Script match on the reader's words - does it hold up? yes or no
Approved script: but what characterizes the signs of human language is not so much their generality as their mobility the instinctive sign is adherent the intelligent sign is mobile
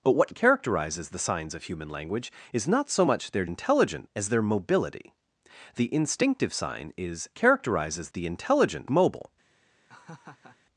no